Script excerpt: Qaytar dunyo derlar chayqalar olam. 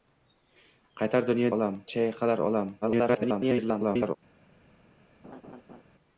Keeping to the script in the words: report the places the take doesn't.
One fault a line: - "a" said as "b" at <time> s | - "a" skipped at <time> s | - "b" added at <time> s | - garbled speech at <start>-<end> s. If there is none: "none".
- "derlar" said as "olam" at 1.5 s
- garbled speech at 2.8-4.2 s